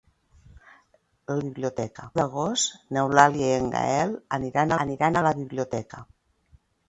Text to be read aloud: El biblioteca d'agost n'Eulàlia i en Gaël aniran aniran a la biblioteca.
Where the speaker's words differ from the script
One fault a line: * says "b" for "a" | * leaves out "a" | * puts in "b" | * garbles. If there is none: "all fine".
all fine